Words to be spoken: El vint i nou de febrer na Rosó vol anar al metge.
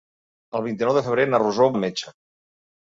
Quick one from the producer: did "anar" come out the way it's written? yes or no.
no